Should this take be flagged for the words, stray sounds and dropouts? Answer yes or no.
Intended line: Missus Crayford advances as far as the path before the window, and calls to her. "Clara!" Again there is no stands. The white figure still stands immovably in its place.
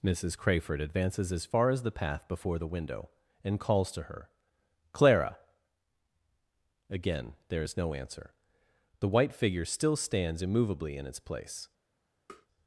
yes